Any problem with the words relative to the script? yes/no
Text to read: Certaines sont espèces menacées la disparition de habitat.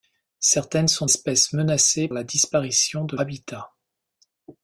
no